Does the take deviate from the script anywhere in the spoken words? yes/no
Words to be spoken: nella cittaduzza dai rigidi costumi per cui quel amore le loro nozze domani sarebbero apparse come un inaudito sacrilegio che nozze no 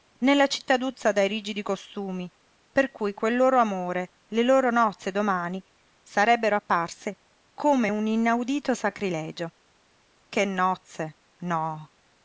yes